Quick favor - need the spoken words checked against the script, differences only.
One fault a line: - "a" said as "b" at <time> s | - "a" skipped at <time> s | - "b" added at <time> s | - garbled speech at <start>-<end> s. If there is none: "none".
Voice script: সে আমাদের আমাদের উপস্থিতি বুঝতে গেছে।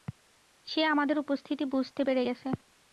- "আমাদের" skipped at 1.2 s
- "পেরে" added at 2.0 s